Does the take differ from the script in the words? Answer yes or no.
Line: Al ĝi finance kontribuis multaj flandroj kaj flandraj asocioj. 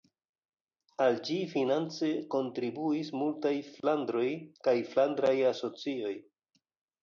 no